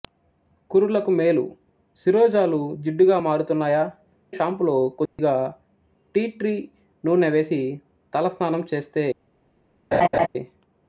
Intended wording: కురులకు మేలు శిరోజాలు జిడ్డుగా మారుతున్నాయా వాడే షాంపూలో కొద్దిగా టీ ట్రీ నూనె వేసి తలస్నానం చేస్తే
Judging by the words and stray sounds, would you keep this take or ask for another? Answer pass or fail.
fail